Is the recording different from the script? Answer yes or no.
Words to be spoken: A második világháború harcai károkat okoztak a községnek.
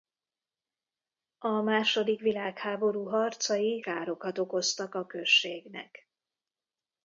no